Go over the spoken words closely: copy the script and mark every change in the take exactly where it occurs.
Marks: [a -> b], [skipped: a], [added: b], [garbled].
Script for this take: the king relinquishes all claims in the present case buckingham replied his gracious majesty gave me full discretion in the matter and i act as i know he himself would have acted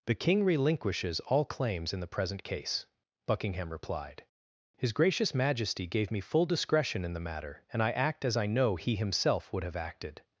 the king relinquishes all claims in the present case buckingham replied his gracious majesty gave me full discretion in the matter and i act as i know he himself would have acted